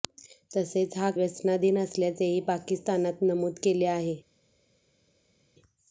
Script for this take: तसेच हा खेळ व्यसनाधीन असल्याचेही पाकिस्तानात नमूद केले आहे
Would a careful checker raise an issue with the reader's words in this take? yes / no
yes